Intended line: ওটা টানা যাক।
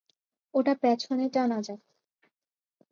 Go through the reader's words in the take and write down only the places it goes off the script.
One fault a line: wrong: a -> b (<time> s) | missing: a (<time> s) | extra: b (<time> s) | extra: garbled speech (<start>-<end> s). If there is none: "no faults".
extra: পেছনে (0.8 s)